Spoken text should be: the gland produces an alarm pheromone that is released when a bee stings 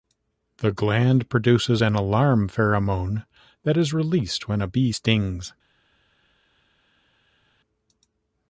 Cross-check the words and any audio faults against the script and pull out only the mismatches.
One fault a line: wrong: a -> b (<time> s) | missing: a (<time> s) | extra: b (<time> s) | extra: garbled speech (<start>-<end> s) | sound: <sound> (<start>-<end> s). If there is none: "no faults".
no faults